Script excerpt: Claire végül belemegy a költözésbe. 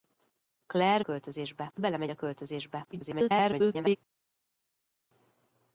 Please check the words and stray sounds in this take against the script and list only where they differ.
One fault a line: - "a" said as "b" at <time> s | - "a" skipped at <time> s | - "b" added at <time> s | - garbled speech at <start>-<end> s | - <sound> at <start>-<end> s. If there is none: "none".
- "végül" said as "költözésbe" at 1.0 s
- garbled speech at 2.9-4.0 s